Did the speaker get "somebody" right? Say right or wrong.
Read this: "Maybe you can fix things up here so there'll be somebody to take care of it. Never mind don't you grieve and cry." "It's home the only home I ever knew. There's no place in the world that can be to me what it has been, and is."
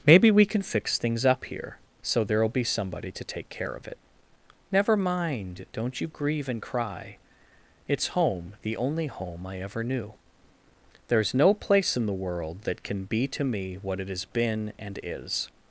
right